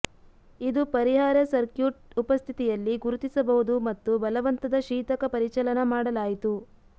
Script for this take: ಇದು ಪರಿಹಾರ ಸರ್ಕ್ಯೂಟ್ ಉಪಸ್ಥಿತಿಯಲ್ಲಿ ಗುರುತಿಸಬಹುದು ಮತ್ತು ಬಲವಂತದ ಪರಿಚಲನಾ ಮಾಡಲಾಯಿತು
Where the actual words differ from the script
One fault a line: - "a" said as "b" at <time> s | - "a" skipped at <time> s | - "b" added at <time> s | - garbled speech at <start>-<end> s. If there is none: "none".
- "ಶೀತಕ" added at 4.9 s